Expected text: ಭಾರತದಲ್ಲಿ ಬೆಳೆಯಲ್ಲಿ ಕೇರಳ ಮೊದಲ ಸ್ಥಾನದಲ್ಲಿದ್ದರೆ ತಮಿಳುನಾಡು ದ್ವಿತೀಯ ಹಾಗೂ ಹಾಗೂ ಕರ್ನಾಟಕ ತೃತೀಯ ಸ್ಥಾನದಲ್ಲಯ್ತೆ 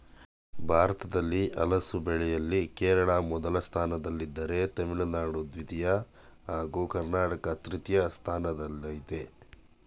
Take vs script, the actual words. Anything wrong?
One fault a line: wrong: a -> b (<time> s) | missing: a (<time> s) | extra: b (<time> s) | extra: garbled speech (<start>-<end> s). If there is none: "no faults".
extra: ಹಲಸು (1.6 s)
missing: ಹಾಗೂ (6.8 s)